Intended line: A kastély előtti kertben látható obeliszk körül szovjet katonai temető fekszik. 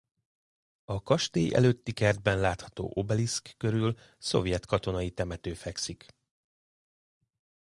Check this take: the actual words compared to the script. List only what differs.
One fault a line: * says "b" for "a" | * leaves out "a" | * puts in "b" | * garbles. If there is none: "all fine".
all fine